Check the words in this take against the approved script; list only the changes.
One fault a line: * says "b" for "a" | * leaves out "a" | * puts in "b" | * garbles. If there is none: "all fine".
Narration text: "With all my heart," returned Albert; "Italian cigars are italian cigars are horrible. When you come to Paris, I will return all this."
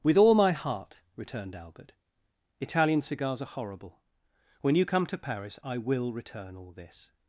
* leaves out "italian cigars are"